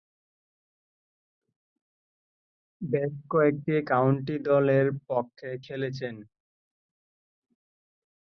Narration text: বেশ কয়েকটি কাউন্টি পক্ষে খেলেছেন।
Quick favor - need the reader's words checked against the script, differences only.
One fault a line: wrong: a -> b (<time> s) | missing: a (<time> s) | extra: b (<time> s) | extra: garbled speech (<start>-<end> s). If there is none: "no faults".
extra: দলের (4.5 s)